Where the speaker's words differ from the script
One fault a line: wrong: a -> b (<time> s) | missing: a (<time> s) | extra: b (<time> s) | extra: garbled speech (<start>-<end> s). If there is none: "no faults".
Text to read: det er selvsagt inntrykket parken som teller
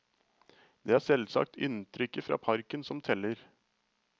extra: fra (2.3 s)